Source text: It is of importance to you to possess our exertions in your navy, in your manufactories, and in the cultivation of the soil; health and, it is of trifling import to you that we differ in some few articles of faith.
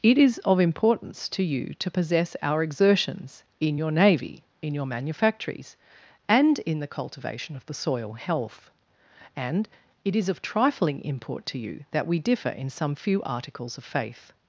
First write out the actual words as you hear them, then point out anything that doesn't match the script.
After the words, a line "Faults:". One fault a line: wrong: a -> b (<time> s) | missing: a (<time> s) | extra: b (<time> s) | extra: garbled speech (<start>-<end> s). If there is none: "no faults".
It is of importance to you to possess our exertions in your navy, in your manufactories, and in the cultivation of the soil; health and, it is of trifling import to you that we differ in some few articles of faith.
Faults:
no faults